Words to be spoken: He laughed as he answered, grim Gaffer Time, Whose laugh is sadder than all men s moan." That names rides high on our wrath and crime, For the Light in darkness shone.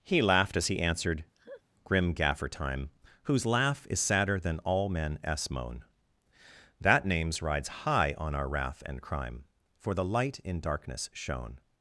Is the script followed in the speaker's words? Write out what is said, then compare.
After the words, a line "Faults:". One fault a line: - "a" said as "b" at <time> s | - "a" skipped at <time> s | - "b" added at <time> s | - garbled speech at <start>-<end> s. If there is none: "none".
He laughed as he answered, grim Gaffer Time, Whose laugh is sadder than all men s moan." That names rides high on our wrath and crime, For the Light in darkness shone.
Faults:
none